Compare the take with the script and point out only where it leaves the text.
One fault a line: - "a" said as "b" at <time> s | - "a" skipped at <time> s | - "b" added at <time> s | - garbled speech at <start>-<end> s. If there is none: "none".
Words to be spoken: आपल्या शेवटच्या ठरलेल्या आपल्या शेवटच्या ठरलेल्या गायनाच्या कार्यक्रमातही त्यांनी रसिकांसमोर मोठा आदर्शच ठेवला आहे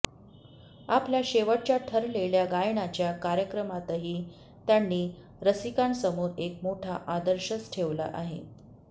- "आपल्या शेवटच्या ठरलेल्या" skipped at 2.5 s
- "एक" added at 6.4 s